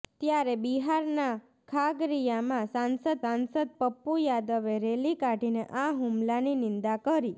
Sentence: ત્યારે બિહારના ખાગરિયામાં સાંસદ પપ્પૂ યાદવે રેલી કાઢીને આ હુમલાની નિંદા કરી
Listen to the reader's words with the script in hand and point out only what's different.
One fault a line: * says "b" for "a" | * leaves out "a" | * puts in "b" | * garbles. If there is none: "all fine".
* puts in "સાંસદ"